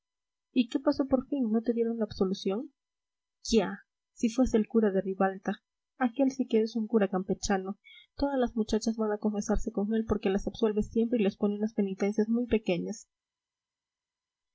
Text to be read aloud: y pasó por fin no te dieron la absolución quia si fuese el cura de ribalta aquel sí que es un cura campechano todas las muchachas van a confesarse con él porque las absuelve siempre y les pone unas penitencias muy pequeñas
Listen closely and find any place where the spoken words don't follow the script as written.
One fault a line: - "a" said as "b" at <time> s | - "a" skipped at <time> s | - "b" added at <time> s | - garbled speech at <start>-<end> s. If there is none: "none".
- "qué" added at 0.7 s